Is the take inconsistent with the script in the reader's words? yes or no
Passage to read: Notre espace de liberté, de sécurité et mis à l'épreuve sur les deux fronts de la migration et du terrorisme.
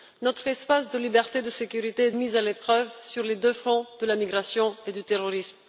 no